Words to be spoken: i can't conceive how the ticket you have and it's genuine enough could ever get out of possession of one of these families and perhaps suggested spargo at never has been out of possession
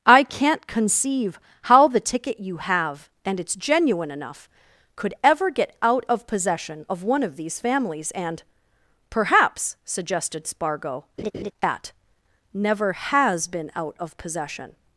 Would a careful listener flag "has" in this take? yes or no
no